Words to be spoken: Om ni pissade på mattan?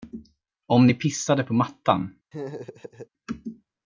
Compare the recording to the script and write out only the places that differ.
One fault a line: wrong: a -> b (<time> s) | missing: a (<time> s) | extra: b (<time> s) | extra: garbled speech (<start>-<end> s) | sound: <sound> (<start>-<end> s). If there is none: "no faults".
sound: laugh (2.3-3.1 s)